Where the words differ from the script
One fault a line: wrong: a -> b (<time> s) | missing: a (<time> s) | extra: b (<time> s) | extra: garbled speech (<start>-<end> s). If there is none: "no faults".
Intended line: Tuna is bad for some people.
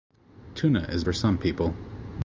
missing: bad (1.0 s)